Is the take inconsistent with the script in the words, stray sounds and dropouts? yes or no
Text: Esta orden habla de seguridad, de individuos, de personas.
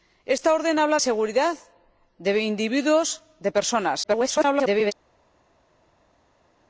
yes